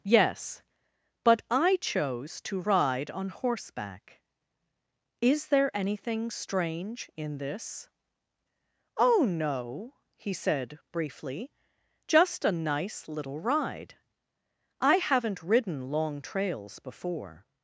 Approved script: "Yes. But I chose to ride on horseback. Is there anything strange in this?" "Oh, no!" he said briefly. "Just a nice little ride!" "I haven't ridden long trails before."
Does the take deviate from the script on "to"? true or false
false